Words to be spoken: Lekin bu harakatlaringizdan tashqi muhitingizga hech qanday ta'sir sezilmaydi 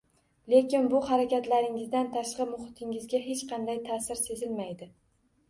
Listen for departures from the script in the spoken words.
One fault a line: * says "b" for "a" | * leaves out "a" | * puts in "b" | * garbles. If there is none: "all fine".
all fine